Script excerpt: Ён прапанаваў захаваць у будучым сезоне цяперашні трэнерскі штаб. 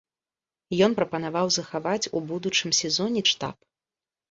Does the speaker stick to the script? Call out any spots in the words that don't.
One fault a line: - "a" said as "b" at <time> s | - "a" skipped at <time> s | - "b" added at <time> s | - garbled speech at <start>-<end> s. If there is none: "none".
- "цяперашні трэнерскі" skipped at 3.2 s